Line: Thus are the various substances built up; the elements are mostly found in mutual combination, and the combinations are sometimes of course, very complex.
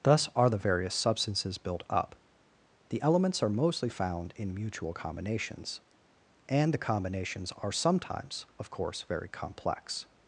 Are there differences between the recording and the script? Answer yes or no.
yes